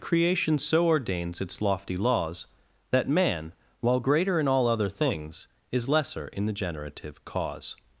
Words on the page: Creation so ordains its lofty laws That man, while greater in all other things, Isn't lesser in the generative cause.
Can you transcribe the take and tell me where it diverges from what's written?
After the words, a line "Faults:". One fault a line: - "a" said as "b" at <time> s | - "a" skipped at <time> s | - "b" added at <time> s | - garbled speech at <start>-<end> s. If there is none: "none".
Creation so ordains its lofty laws That man, while greater in all other things, Is lesser in the generative cause.
Faults:
- "Isn't" said as "Is" at 5.7 s